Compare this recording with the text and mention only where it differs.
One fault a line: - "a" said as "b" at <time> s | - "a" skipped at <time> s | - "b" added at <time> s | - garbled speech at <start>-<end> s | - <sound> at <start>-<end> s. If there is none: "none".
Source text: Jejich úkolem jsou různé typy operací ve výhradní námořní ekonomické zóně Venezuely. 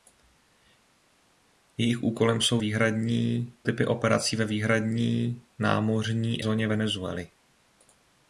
- "různé" said as "výhradní" at 2.6 s
- "ekonomické" skipped at 6.4 s